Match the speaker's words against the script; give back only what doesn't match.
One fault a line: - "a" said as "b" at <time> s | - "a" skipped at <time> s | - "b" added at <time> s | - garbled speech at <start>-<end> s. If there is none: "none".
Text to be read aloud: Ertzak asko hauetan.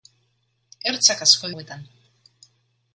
none